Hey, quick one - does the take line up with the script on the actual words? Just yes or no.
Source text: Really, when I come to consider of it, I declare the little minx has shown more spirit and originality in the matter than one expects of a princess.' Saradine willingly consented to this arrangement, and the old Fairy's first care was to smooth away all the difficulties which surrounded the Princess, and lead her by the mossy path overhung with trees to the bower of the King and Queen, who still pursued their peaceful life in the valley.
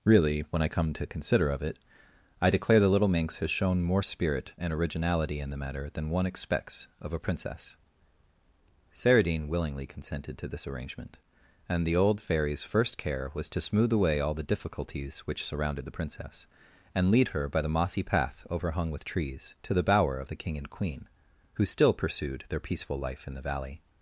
yes